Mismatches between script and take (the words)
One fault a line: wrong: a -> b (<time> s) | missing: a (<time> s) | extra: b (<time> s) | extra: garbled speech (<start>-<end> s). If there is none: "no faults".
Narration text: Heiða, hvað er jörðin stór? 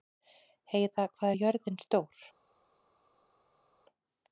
no faults